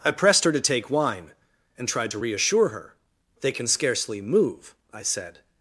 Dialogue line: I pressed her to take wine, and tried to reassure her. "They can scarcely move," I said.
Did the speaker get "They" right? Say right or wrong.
right